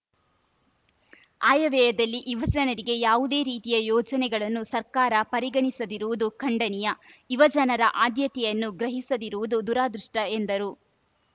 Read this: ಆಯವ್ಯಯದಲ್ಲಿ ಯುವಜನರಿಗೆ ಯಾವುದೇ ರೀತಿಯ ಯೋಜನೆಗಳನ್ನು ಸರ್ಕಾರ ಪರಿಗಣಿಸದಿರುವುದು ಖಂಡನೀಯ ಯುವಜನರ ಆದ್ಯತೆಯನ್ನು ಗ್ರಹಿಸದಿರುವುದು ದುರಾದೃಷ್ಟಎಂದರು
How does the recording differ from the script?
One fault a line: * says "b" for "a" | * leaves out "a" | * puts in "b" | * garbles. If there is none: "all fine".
all fine